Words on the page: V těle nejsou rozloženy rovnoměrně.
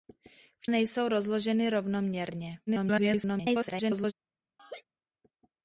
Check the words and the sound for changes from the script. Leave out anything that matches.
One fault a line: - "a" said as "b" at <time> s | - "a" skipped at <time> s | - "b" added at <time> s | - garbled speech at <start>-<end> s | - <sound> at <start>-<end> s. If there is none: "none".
- "těle" skipped at 0.7 s
- garbled speech at 2.7-4.1 s
- laugh at 4.6-4.8 s